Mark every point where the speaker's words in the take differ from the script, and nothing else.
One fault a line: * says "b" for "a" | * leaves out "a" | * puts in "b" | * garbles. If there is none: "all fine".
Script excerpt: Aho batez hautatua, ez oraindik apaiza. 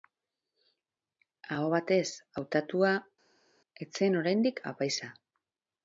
* puts in "zen"